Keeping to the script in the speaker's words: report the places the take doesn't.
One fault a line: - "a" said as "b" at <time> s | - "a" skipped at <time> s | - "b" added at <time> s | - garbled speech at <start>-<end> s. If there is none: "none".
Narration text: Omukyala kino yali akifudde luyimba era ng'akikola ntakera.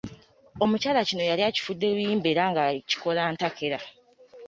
none